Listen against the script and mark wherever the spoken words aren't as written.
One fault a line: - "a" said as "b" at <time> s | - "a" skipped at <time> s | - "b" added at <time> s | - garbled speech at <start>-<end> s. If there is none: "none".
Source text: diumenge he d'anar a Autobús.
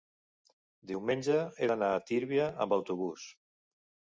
- "Tírvia amb" added at 2.1 s